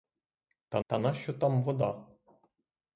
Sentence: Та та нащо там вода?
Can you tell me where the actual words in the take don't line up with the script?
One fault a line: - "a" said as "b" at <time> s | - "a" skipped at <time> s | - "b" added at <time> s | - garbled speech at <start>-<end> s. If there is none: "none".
none